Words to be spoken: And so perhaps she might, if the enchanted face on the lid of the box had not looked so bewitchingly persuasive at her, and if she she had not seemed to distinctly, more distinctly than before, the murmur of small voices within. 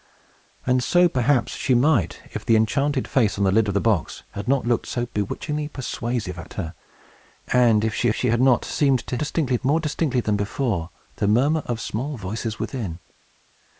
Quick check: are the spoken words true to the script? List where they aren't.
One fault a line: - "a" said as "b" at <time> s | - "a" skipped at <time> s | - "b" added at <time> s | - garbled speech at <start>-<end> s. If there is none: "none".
none